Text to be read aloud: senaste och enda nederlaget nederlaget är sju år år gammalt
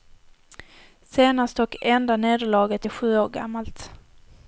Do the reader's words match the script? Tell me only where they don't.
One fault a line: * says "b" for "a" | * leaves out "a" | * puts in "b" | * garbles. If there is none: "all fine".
* leaves out "nederlaget"
* leaves out "år"